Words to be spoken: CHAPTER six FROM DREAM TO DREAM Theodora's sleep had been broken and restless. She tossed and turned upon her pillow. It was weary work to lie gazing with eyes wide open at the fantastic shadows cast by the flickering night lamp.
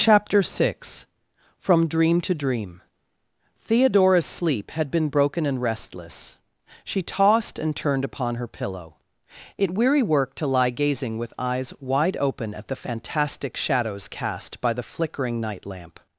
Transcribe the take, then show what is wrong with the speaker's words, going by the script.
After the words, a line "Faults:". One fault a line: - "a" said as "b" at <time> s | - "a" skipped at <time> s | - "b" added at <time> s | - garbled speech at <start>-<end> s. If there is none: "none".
CHAPTER six FROM DREAM TO DREAM Theodora's sleep had been broken and restless. She tossed and turned upon her pillow. It weary work to lie gazing with eyes wide open at the fantastic shadows cast by the flickering night lamp.
Faults:
- "was" skipped at 9.8 s